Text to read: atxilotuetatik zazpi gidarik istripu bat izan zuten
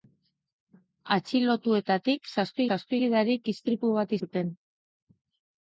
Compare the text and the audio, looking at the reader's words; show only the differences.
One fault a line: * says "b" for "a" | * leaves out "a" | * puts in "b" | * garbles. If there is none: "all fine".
* puts in "zazpi"
* leaves out "izan"